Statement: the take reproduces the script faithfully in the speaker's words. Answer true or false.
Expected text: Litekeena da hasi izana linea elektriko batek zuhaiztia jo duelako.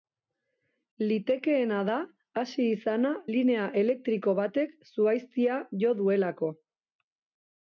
true